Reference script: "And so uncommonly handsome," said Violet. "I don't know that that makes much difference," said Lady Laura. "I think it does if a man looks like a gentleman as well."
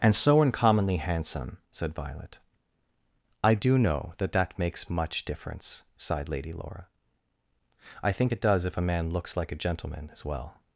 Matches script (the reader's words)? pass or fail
fail